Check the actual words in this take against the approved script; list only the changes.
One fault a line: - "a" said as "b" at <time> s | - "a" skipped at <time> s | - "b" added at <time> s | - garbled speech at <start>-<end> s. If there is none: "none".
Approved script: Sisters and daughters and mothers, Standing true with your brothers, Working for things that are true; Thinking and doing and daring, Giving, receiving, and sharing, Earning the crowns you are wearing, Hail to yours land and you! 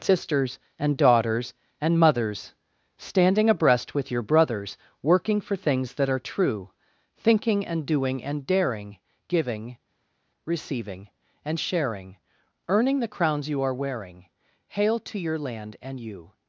- "true" said as "abreast" at 3.5 s
- "yours" said as "your" at 15.2 s